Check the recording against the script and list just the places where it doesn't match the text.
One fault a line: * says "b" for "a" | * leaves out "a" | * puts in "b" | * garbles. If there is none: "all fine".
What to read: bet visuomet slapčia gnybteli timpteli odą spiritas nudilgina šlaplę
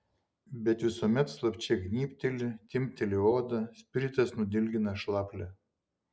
all fine